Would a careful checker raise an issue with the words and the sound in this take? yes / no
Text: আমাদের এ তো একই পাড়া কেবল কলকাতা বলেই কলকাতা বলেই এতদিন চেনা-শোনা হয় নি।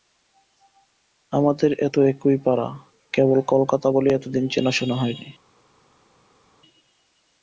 yes